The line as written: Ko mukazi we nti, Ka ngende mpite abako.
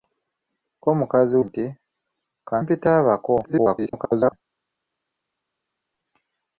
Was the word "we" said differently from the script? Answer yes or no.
yes